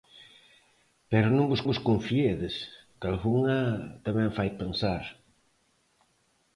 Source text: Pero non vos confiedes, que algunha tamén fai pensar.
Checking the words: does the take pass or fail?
fail